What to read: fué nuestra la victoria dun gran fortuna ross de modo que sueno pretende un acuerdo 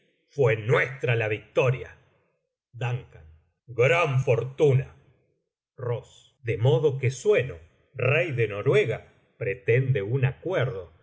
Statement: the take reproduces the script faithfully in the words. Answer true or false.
false